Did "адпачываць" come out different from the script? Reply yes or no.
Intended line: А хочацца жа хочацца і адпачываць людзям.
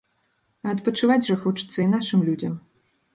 yes